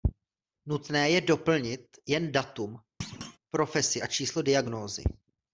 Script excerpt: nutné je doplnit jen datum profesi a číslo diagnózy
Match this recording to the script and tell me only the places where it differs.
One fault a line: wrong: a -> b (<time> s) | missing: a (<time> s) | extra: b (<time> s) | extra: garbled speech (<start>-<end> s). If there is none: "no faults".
no faults